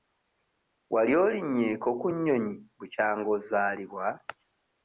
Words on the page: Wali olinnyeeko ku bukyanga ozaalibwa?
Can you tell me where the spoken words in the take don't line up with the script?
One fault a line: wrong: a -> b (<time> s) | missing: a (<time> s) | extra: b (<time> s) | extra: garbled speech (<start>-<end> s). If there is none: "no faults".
extra: nnyonyi (2.1 s)